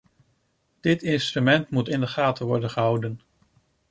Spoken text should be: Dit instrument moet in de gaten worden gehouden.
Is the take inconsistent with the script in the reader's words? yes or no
no